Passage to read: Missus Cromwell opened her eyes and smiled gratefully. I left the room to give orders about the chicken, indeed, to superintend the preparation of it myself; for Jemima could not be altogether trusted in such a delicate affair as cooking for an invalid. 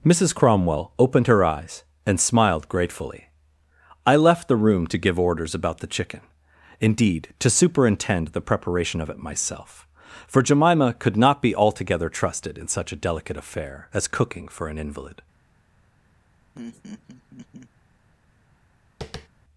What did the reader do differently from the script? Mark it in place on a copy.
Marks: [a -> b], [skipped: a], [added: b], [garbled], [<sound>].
Missus Cromwell opened her eyes and smiled gratefully. I left the room to give orders about the chicken, indeed, to superintend the preparation of it myself; for Jemima could not be altogether trusted in such a delicate affair as cooking for an invalid. [laugh] [tap]